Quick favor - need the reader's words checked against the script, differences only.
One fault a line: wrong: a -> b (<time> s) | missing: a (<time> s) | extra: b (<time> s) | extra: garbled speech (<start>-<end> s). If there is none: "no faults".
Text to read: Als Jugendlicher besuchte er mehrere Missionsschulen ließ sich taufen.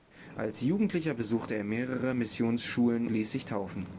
no faults